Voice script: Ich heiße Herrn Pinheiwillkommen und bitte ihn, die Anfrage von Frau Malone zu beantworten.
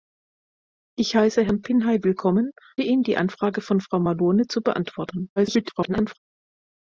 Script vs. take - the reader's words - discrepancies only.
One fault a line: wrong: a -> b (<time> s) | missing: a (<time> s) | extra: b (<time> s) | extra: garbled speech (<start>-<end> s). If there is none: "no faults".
missing: und bitte (2.5 s)
extra: garbled speech (5.4-6.2 s)